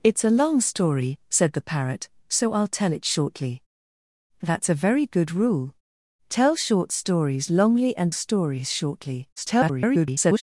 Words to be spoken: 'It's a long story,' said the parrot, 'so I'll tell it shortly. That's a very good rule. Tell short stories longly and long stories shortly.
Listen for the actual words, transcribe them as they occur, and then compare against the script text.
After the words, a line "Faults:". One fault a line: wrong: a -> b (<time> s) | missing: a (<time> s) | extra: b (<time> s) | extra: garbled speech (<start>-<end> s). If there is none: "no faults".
'It's a long story,' said the parrot, 'so I'll tell it shortly. That's a very good rule. Tell short stories longly and stories shortly. [garbled]
Faults:
missing: long (8.2 s)
extra: garbled speech (9.4-10.4 s)